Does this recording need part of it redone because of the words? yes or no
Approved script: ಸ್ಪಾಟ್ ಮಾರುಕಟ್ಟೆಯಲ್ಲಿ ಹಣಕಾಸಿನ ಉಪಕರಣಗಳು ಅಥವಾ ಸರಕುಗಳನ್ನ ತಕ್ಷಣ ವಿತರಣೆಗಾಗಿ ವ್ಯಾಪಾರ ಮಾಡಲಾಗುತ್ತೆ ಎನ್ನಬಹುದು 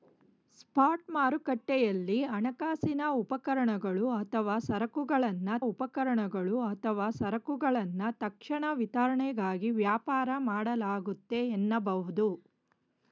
yes